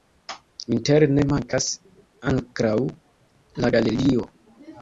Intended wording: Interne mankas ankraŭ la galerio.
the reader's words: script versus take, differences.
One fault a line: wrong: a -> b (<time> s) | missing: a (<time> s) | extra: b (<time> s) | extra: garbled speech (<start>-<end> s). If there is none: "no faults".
no faults